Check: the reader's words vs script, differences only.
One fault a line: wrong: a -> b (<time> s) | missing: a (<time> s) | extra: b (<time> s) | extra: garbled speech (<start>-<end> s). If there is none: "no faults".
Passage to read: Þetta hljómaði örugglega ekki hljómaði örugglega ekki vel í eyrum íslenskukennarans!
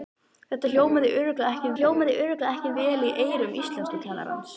no faults